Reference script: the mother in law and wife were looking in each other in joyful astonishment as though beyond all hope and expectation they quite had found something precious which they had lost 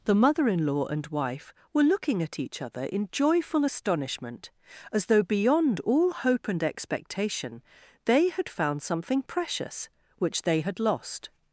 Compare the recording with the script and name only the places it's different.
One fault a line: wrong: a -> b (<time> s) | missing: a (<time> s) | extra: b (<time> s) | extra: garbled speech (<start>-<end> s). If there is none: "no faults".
wrong: in -> at (2.2 s)
missing: quite (8.3 s)